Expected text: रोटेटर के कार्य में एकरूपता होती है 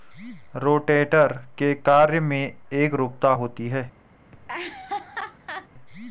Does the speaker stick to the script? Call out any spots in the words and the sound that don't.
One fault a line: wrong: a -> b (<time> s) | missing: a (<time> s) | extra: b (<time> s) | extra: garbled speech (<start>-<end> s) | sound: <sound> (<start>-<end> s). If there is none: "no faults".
sound: laugh (4.3-5.7 s)